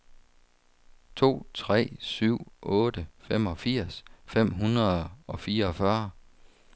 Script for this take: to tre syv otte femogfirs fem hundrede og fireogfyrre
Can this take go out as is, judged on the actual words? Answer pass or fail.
pass